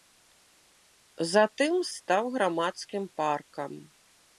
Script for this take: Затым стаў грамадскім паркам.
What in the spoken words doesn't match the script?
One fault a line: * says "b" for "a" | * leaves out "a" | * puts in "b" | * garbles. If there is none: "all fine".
all fine